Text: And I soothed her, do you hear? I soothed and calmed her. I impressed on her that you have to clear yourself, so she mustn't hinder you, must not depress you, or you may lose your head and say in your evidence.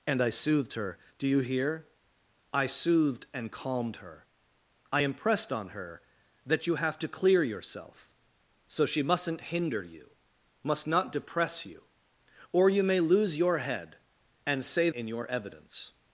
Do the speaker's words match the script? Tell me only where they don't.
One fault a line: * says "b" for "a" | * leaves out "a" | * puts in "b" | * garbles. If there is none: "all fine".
all fine